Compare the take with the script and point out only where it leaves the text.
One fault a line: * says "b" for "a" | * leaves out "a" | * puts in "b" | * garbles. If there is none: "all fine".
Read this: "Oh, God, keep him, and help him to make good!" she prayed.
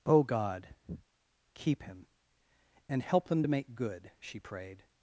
* says "them" for "him"